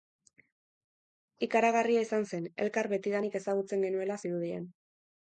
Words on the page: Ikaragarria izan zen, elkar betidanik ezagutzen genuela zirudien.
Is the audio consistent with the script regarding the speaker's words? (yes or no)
yes